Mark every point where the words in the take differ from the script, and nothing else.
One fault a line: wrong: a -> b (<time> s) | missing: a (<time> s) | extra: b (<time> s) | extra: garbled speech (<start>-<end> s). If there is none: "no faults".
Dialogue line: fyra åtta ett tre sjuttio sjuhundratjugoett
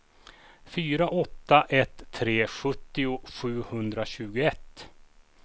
no faults